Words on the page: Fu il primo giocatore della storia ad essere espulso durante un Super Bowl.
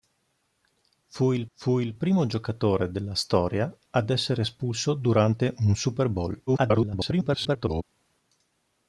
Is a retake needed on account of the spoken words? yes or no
yes